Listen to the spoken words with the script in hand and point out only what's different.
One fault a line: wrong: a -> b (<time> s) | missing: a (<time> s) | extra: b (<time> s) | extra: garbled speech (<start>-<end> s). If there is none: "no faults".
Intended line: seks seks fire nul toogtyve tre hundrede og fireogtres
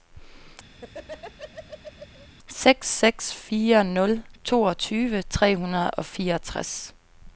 no faults